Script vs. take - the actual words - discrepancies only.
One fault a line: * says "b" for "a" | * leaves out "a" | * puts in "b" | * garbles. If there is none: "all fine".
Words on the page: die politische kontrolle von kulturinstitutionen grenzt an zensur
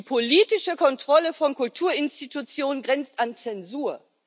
all fine